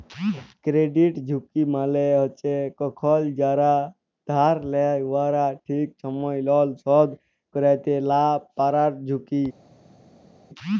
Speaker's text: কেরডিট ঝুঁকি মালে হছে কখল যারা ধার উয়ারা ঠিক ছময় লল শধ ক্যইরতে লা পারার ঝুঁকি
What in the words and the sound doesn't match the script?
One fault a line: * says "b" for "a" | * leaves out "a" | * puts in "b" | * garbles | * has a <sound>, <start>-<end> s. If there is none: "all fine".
* puts in "লেয়"